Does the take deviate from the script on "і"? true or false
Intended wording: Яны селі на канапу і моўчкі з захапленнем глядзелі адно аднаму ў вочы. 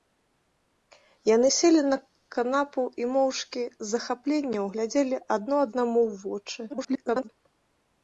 false